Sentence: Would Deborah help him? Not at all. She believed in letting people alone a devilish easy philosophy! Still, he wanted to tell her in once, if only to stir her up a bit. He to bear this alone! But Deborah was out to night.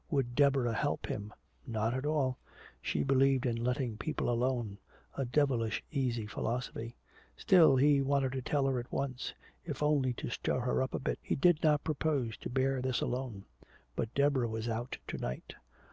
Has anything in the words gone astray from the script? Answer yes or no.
yes